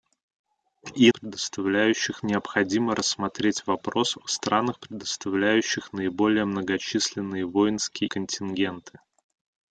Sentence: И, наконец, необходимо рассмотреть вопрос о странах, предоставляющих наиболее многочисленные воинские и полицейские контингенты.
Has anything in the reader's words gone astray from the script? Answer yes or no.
yes